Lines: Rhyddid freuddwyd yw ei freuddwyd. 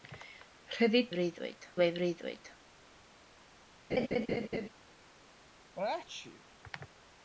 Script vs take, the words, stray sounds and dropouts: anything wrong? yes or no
yes